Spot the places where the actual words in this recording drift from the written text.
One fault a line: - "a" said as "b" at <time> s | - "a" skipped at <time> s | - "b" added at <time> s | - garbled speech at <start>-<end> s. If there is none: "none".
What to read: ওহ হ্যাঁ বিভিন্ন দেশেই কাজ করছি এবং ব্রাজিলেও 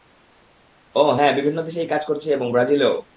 none